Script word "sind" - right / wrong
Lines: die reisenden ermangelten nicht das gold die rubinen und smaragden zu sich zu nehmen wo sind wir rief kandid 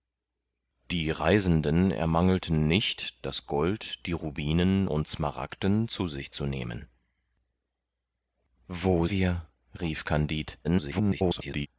wrong